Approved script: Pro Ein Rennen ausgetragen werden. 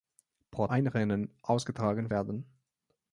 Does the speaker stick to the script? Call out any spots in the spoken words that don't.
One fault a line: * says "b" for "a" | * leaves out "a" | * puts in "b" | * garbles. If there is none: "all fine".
all fine